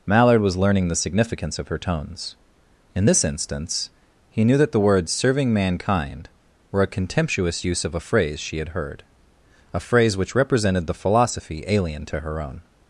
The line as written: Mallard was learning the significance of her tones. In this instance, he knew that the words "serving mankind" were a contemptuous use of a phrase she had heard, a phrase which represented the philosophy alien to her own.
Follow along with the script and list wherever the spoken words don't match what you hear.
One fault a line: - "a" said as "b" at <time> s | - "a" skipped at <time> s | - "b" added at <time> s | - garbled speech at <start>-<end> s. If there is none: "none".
none